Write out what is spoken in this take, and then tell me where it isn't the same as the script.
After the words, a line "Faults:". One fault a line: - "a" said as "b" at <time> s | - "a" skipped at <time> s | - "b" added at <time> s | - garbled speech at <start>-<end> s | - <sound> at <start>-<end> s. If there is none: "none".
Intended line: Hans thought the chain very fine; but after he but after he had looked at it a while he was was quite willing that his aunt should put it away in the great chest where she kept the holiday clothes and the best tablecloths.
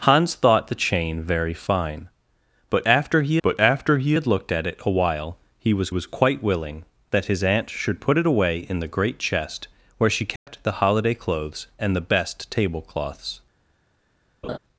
Hans thought the chain very fine; but after he but after he had looked at it a while he was was quite willing that his aunt should put it away in the great chest where she kept the holiday clothes and the best tablecloths.
Faults:
- dropout at 10.4-10.5 s
- laugh at 14.4-14.6 s